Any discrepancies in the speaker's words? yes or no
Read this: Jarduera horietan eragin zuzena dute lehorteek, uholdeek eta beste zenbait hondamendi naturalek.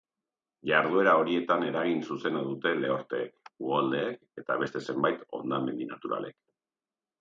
no